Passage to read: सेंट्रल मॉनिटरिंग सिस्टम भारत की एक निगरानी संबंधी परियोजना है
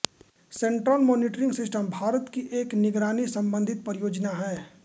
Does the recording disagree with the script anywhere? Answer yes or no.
no